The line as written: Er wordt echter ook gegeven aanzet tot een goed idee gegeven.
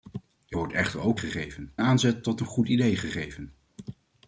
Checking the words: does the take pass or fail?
pass